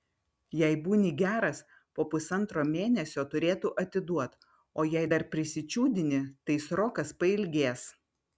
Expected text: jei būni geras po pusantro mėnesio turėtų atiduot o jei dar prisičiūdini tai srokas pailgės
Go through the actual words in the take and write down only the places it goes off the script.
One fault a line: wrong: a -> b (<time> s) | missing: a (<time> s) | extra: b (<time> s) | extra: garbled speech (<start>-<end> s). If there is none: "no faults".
no faults